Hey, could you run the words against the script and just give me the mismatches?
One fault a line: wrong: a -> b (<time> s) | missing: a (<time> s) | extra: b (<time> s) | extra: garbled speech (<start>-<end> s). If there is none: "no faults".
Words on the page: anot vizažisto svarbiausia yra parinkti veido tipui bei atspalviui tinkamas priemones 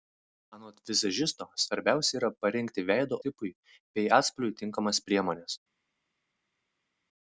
no faults